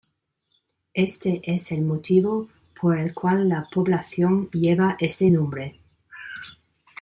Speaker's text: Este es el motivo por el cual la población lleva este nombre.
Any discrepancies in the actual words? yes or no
no